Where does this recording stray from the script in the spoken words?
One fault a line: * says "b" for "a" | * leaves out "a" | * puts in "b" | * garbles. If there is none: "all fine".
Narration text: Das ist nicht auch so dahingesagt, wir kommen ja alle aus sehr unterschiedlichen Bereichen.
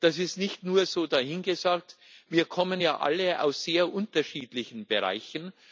* says "nur" for "auch"